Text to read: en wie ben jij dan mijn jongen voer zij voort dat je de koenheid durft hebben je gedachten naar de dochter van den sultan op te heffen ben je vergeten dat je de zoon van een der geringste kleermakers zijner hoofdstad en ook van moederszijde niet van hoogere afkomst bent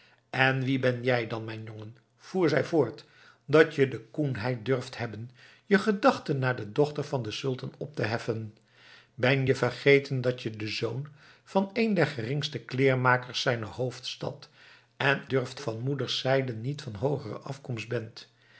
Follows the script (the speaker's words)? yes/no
no